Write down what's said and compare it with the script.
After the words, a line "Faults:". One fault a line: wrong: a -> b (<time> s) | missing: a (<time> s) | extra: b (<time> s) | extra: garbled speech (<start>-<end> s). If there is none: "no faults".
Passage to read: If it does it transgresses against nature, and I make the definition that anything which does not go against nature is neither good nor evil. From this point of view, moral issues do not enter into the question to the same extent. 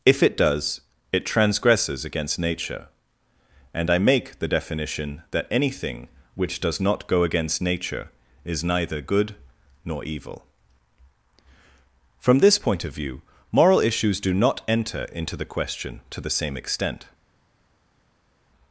If it does it transgresses against nature, and I make the definition that anything which does not go against nature is neither good nor evil. From this point of view, moral issues do not enter into the question to the same extent.
Faults:
no faults